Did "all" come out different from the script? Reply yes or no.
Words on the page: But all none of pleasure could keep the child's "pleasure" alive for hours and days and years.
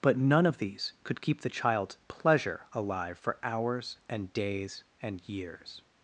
yes